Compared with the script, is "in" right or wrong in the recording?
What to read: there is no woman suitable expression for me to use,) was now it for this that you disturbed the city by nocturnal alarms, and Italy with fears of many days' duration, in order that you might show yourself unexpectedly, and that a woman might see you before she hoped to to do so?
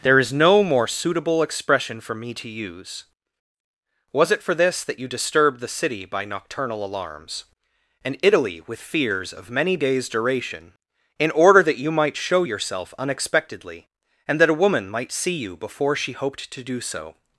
right